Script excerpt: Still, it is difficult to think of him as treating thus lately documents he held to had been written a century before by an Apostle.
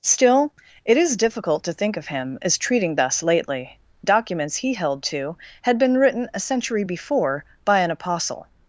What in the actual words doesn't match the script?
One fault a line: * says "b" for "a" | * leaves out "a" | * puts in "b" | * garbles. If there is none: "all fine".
all fine